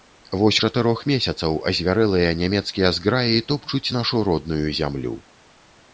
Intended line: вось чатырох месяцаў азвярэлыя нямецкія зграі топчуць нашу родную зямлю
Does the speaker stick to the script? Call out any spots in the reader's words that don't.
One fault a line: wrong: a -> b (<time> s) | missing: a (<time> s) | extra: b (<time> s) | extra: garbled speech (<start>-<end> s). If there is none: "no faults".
no faults